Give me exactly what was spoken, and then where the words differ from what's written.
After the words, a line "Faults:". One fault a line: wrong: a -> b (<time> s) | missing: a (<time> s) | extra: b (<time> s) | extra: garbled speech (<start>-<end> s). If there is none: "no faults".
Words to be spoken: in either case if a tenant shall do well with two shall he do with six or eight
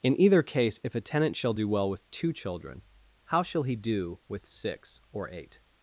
in either case if a tenant shall do well with two children how shall he do with six or eight
Faults:
extra: children how (2.3 s)